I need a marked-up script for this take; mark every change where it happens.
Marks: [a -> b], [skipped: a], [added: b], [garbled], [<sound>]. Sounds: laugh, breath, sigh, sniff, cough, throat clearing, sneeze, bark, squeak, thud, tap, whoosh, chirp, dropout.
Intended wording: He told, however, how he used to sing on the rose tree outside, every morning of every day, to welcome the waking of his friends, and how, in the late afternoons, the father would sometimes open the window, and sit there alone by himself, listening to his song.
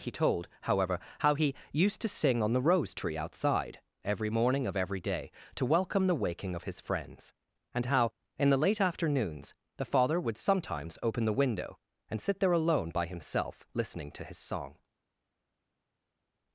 He told, however, how he used to sing on the rose tree outside, every morning of every day, to welcome the waking of his friends, and how, in the late afternoons, the father would sometimes open the window, and sit there alone by himself, listening to his song.